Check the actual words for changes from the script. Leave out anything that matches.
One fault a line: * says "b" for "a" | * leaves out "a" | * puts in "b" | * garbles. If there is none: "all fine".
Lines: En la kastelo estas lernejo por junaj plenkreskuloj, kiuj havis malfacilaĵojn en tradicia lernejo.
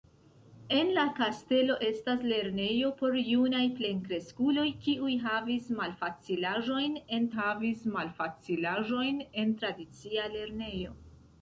* puts in "havis malfacilaĵojn en"